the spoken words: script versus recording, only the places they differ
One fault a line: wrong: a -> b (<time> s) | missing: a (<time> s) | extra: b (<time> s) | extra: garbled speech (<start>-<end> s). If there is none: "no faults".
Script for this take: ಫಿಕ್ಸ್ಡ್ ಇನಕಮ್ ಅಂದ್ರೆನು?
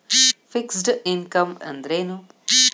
no faults